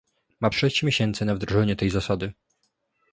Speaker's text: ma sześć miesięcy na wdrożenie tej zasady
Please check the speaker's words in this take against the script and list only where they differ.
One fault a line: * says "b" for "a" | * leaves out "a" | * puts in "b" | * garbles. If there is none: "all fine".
all fine